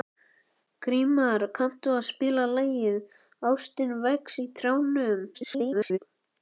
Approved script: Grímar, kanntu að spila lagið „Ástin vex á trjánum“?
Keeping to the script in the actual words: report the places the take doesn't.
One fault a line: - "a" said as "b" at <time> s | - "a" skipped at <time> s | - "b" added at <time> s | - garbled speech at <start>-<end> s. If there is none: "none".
- garbled speech at 5.3-6.0 s